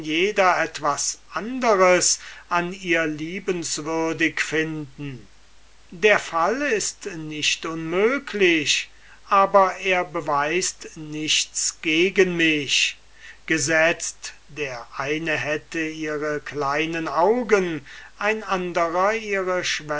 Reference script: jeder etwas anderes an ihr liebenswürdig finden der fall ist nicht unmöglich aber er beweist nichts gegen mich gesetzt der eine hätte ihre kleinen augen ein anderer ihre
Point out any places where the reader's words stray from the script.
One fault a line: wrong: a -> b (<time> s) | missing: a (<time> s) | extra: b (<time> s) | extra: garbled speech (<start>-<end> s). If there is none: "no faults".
no faults